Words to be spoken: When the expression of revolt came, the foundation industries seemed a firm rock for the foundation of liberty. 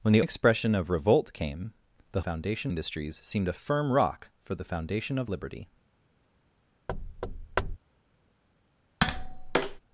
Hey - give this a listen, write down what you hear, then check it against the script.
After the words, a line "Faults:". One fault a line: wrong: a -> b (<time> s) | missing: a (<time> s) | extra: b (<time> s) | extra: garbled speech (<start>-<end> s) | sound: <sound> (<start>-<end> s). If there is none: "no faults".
When the expression of revolt came, the foundation industries seemed a firm rock for the foundation of liberty.
Faults:
sound: thud (6.9-7.8 s)
sound: tap (9.0-9.8 s)